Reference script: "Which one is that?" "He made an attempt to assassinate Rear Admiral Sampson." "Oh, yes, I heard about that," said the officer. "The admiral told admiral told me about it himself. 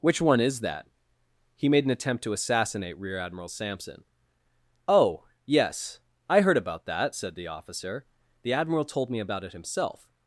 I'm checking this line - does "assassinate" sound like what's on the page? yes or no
yes